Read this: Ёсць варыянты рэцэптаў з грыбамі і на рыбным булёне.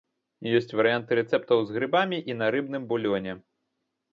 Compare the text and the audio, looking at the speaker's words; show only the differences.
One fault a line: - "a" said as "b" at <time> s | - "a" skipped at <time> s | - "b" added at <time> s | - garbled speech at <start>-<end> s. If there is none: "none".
none